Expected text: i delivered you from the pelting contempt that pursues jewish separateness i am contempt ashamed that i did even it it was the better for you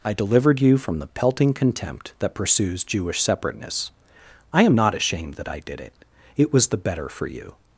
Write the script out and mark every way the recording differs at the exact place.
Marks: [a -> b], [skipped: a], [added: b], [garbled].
i delivered you from the pelting contempt that pursues jewish separateness i am [contempt -> not] ashamed that i did [skipped: even] it it was the better for you